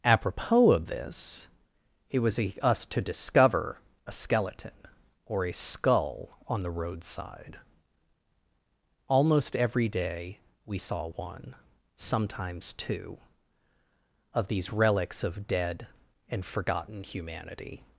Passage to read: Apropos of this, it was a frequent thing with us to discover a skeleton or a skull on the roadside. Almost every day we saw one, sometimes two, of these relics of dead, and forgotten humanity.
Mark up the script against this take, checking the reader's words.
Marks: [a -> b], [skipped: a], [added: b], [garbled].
Apropos of this, it was a [skipped: frequent thing with] us to discover a skeleton or a skull on the roadside. Almost every day we saw one, sometimes two, of these relics of dead, and forgotten humanity.